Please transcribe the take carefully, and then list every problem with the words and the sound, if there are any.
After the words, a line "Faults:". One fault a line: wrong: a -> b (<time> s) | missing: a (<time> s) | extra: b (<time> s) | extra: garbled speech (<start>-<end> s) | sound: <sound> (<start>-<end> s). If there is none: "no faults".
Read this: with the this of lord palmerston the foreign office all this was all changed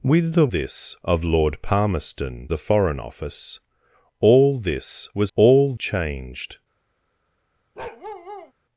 with the this of lord palmerston the foreign office all this was all changed
Faults:
sound: bark (7.8-8.5 s)